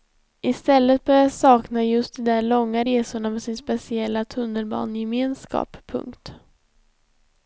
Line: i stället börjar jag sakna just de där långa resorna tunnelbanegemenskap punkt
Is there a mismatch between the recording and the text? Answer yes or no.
yes